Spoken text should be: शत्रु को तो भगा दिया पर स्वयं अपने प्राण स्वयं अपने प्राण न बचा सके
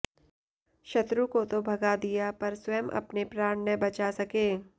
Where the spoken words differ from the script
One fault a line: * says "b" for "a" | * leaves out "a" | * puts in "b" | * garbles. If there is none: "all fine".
* leaves out "स्वयं अपने प्राण"